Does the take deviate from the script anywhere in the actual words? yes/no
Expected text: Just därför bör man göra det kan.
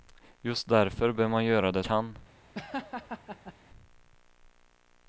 no